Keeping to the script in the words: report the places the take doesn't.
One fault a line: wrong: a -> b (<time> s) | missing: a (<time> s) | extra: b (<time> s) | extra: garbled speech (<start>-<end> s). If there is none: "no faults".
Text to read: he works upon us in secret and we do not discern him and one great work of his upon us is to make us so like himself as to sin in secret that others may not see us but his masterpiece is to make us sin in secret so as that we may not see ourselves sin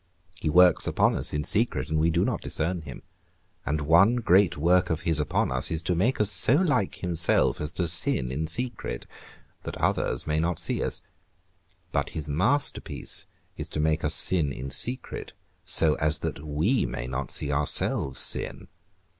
no faults